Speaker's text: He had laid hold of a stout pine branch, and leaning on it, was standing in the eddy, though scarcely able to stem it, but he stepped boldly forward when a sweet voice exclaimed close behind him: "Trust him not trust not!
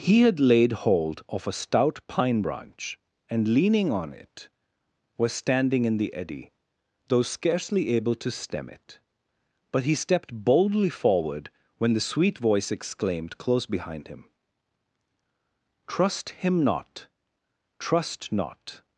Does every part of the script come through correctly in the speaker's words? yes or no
no